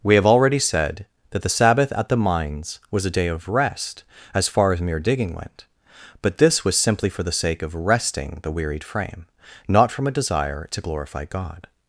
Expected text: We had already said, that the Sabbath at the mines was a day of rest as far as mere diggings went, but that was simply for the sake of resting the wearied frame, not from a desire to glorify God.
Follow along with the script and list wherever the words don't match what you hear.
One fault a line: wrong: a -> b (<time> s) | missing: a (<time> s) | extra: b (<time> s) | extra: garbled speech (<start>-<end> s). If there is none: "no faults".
wrong: had -> have (0.1 s)
wrong: diggings -> digging (5.0 s)
wrong: that -> this (6.4 s)